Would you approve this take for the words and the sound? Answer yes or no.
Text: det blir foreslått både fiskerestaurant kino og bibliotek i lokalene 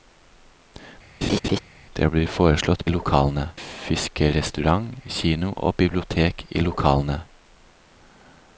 no